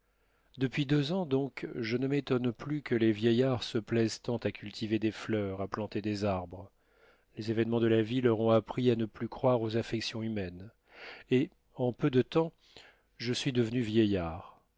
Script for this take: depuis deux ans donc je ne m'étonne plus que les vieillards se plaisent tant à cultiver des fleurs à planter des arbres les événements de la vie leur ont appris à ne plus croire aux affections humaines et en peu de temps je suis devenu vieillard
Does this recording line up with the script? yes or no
yes